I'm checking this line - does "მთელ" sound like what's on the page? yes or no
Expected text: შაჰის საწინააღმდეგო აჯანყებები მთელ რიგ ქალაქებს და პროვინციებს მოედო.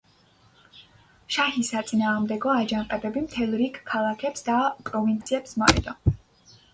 yes